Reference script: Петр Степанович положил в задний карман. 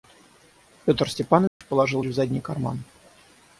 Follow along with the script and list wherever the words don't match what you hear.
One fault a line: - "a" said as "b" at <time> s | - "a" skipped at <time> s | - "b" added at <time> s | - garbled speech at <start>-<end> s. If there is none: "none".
none